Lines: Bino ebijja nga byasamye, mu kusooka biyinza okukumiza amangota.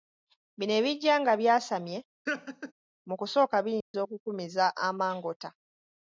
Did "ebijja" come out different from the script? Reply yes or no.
no